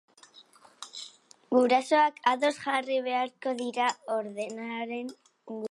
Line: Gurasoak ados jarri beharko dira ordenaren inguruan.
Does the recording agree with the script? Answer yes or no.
yes